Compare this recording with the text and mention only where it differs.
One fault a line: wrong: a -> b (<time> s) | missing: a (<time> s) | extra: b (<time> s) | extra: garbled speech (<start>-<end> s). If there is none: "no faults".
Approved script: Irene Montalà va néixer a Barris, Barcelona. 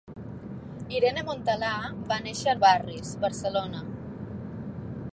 no faults